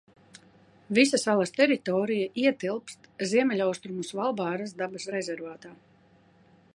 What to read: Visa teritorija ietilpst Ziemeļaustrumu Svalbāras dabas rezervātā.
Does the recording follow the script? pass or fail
fail